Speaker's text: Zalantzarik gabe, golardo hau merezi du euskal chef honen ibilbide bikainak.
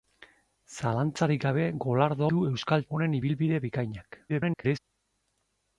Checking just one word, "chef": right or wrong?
wrong